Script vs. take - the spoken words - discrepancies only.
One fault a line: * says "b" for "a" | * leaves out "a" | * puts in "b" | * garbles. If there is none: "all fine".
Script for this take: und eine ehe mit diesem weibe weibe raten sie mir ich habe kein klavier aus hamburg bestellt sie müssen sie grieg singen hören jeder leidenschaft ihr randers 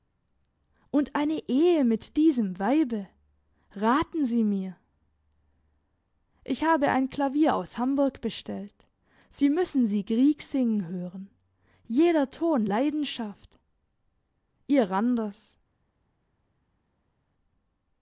* leaves out "weibe"
* says "ein" for "kein"
* puts in "ton"